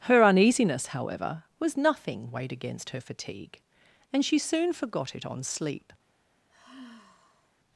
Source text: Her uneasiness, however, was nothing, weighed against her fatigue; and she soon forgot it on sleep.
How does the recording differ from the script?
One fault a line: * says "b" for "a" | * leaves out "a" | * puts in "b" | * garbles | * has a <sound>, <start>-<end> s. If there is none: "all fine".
* has a sigh, 6.5-7.5 s